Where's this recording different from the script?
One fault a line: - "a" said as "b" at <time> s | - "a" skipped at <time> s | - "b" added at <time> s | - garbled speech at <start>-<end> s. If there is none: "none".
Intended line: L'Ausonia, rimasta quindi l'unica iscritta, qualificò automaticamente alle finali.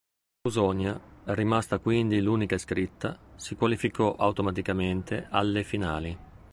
- "si" added at 3.4 s